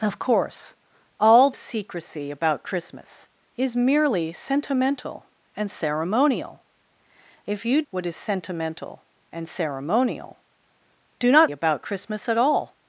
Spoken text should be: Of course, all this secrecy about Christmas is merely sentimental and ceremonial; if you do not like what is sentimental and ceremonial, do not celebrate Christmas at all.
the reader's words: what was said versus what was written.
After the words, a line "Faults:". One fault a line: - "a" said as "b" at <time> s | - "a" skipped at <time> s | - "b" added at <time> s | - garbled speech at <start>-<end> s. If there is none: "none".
Of course, all secrecy about Christmas is merely sentimental and ceremonial; if you what is sentimental and ceremonial, do not about Christmas at all.
Faults:
- "this" skipped at 1.5 s
- "do not like" skipped at 7.8 s
- "celebrate" said as "about" at 11.5 s